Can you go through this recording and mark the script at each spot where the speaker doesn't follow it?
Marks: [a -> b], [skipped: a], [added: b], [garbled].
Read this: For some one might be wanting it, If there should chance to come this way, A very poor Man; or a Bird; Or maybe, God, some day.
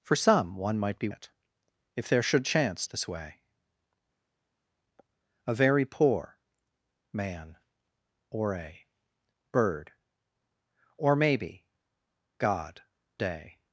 For some one might be [skipped: wanting] it, If there should chance [skipped: to come] this way, A very poor Man; or a Bird; Or maybe, God, [skipped: some] day.